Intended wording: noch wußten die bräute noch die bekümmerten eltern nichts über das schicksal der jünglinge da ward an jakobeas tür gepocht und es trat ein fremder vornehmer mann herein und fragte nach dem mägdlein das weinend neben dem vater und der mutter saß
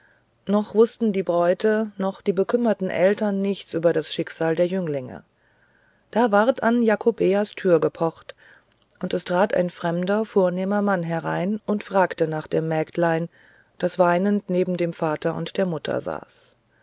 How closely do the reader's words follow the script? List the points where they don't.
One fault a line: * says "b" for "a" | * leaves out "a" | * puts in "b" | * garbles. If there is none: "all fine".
all fine